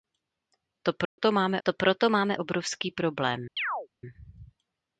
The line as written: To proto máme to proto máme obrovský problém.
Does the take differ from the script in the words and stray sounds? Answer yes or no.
yes